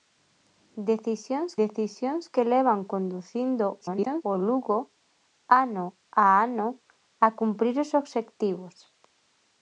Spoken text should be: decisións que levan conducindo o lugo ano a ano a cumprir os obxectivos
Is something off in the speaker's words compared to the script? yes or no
yes